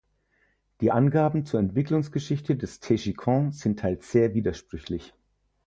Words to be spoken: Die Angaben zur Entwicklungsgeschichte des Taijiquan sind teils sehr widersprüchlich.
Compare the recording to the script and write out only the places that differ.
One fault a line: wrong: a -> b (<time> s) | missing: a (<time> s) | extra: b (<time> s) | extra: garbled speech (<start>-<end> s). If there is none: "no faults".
no faults